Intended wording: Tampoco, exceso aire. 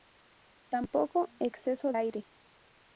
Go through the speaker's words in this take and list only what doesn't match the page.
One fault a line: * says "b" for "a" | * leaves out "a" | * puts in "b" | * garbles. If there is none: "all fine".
all fine